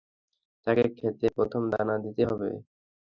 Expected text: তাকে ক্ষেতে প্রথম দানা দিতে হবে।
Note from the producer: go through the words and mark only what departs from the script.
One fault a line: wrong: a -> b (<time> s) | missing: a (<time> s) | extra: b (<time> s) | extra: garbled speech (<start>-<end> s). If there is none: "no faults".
no faults